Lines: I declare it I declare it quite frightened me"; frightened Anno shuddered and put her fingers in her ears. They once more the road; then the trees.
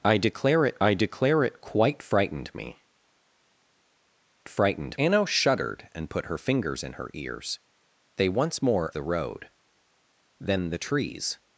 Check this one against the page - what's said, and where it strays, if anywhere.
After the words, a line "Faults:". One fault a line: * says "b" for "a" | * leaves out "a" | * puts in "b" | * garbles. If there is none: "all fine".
I declare it I declare it quite frightened me"; frightened Anno shuddered and put her fingers in her ears. They once more the road; then the trees.
Faults:
all fine